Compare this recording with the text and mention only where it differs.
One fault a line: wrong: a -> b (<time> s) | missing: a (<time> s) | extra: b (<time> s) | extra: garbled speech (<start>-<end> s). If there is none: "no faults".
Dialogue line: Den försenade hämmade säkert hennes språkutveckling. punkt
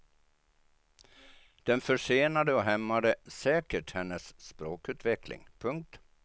extra: och (2.5 s)